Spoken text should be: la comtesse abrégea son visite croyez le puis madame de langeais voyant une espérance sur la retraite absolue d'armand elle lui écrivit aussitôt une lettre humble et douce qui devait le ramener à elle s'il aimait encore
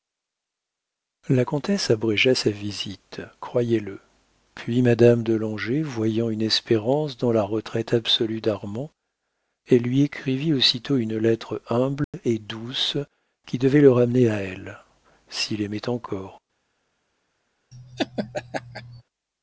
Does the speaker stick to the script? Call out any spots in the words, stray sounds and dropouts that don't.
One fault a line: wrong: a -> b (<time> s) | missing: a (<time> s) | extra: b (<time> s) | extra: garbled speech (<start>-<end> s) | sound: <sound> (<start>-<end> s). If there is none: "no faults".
wrong: son -> sa (2.3 s)
wrong: sur -> dans (7.2 s)
sound: dropout (12.0-12.1 s)
sound: laugh (17.7-19.0 s)